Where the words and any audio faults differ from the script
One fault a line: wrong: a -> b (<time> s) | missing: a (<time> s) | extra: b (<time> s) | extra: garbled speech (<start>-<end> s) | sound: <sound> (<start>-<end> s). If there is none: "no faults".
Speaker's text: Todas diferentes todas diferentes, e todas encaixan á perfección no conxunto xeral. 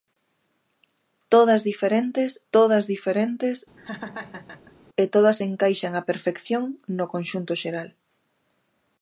sound: laugh (3.8-4.8 s)